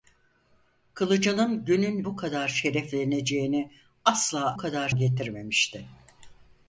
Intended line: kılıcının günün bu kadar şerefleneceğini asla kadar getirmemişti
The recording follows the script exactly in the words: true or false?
true